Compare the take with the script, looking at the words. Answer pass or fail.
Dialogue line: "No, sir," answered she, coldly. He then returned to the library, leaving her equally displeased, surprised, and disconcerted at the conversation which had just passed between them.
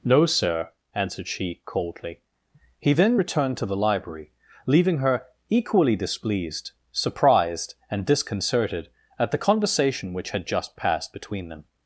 pass